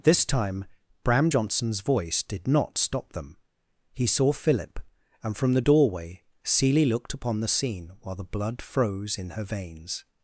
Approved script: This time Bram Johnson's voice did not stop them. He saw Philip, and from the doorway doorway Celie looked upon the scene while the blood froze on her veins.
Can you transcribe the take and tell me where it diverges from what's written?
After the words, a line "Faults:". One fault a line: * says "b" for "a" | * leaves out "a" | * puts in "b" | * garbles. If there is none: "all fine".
This time Bram Johnson's voice did not stop them. He saw Philip, and from the doorway Celie looked upon the scene while the blood froze in her veins.
Faults:
* leaves out "doorway"
* says "in" for "on"